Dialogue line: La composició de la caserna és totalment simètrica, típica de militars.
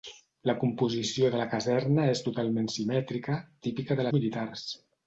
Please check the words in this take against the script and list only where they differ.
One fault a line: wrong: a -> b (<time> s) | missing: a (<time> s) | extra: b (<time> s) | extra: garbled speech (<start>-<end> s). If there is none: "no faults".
no faults